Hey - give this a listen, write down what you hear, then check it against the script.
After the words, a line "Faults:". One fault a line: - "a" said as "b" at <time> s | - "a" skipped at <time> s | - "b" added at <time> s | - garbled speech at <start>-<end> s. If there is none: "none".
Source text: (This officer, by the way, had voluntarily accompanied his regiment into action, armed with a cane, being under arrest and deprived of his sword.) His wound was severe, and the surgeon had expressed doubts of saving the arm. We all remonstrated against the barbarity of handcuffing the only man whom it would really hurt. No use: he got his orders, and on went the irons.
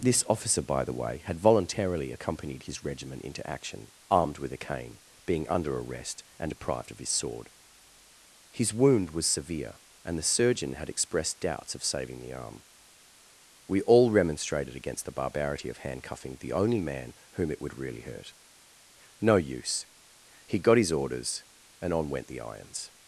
(This officer, by the way, had voluntarily accompanied his regiment into action, armed with a cane, being under arrest and deprived of his sword.) His wound was severe, and the surgeon had expressed doubts of saving the arm. We all remonstrated against the barbarity of handcuffing the only man whom it would really hurt. No use: he got his orders, and on went the irons.
Faults:
none